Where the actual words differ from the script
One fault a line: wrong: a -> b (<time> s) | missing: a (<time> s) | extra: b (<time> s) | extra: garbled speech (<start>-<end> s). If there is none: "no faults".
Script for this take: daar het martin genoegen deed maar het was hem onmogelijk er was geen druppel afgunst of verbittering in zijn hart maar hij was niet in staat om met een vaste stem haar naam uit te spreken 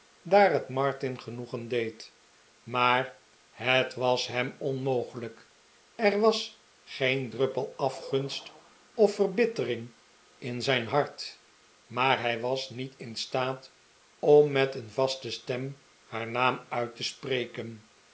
no faults